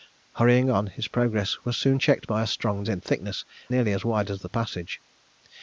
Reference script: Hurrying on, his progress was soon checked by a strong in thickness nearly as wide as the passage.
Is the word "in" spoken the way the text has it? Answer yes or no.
yes